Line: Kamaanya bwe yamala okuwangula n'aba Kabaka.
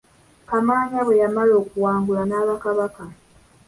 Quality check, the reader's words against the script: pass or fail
pass